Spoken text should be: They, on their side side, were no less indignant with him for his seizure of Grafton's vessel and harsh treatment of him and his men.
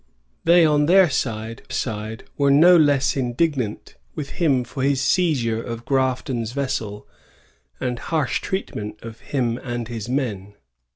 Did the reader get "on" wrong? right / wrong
right